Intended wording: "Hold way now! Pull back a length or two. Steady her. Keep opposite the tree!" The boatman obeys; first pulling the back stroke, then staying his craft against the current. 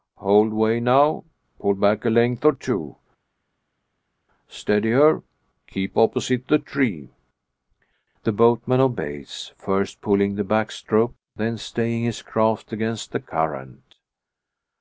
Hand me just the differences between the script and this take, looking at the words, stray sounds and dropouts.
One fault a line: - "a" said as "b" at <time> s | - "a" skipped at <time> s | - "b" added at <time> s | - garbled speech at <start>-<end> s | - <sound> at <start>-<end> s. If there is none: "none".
none